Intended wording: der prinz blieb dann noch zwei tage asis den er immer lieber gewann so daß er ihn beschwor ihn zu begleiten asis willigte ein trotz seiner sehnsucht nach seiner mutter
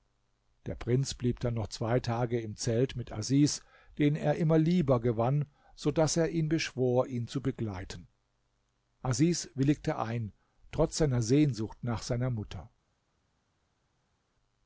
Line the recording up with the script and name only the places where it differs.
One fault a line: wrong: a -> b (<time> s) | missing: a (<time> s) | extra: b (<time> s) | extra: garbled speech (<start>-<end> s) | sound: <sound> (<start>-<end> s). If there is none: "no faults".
extra: im zelt mit (2.4 s)